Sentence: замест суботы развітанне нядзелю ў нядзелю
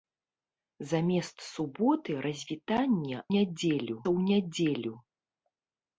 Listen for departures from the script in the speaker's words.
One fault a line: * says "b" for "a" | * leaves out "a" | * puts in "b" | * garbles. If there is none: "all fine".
all fine